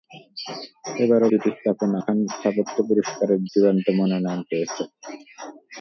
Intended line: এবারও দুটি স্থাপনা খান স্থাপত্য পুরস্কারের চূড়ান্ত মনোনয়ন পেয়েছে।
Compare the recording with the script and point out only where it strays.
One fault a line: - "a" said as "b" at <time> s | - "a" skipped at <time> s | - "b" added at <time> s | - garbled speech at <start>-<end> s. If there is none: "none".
none